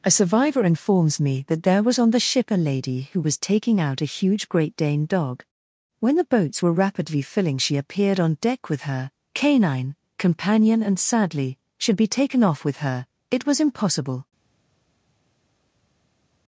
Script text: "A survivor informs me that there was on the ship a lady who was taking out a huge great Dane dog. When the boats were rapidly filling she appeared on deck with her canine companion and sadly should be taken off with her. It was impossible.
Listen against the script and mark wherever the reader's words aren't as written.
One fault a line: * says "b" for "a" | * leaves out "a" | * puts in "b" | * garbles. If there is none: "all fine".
all fine